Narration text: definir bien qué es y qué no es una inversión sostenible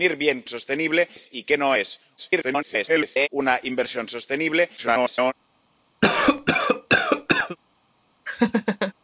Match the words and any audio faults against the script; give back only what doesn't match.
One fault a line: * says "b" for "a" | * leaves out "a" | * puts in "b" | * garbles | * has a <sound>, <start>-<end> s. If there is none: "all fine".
* says "sostenible" for "qué"
* garbles
* garbles
* has a cough, 6.0-7.6 s
* has a laugh, 8.3-8.9 s